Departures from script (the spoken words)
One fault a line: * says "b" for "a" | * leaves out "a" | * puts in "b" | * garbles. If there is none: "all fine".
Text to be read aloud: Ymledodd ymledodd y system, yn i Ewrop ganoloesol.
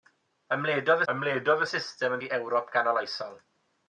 all fine